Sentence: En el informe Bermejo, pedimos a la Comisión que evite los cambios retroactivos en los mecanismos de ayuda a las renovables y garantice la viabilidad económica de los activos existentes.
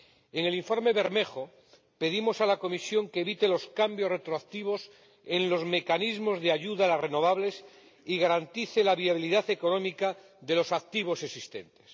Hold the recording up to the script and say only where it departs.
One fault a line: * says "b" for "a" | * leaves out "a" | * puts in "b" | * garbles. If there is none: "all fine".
all fine